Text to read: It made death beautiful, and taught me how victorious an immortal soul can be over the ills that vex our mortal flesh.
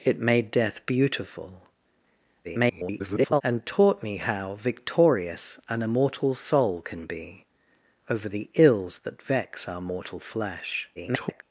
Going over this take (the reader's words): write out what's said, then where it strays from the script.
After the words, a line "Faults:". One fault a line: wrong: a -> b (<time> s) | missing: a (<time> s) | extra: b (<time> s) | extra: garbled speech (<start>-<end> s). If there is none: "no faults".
It made death beautiful, [garbled] and taught me how victorious an immortal soul can be over the ills that vex our mortal flesh. [garbled]
Faults:
extra: garbled speech (2.4-3.4 s)
extra: garbled speech (11.0-11.4 s)